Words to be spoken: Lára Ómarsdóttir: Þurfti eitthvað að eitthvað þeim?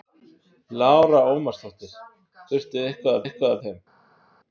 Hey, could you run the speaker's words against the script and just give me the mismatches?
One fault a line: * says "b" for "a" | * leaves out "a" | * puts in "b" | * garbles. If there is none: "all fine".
all fine